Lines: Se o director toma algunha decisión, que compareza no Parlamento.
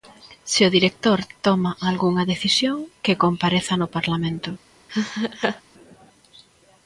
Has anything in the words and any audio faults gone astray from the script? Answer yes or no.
yes